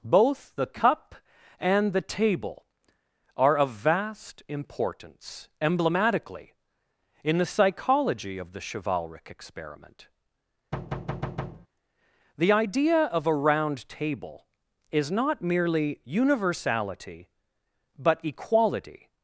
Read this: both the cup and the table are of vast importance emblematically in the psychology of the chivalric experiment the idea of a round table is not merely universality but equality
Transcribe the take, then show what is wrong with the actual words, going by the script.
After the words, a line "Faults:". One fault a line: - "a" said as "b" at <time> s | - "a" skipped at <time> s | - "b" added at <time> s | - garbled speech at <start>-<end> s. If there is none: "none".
both the cup and the table are of vast importance emblematically in the psychology of the chivalric experiment the idea of a round table is not merely universality but equality
Faults:
none